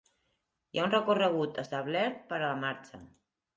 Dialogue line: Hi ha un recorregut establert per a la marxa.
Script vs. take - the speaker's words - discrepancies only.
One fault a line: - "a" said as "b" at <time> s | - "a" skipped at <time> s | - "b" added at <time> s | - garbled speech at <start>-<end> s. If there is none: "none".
none